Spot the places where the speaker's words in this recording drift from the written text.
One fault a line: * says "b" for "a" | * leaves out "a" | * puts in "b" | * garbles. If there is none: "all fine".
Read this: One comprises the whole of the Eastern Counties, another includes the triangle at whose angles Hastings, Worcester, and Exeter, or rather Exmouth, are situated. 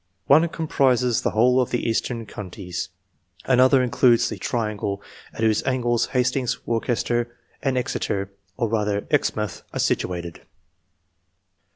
all fine